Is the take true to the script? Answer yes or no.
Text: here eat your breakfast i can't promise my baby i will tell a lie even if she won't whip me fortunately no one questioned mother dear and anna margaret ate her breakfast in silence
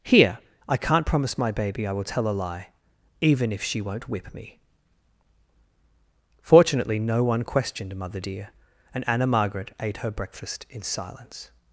no